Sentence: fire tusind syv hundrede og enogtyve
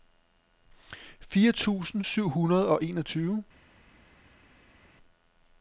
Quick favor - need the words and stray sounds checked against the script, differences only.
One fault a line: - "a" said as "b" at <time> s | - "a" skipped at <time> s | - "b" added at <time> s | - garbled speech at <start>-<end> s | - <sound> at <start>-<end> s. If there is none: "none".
none